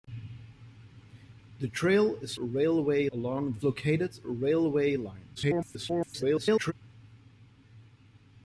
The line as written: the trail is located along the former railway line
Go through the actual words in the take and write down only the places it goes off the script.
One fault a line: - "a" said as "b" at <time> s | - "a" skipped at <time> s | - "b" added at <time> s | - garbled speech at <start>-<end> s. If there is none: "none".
- "located" said as "railway" at 2.3 s
- "former" said as "located" at 3.6 s
- garbled speech at 5.4-6.7 s